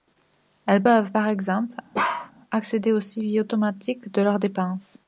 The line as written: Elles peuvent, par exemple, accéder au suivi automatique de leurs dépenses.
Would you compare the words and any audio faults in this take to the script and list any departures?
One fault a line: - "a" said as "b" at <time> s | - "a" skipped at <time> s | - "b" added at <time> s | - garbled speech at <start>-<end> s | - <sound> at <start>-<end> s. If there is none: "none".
- bark at 1.9-2.3 s